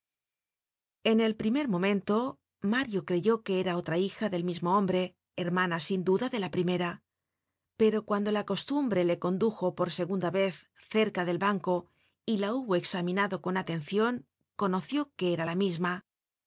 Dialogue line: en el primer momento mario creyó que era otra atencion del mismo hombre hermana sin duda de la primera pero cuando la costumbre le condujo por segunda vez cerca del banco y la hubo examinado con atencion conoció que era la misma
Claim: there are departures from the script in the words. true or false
true